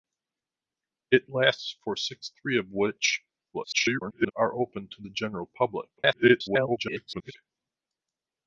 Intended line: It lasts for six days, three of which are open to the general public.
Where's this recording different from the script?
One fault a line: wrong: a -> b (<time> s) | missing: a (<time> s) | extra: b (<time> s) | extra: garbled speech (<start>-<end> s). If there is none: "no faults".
missing: days (2.3 s)
extra: garbled speech (3.5-4.3 s)
extra: garbled speech (6.0-7.3 s)